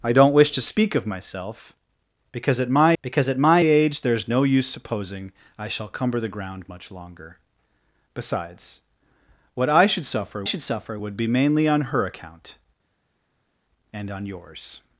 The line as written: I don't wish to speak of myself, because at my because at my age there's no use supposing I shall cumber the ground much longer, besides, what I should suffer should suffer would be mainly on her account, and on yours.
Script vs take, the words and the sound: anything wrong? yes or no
no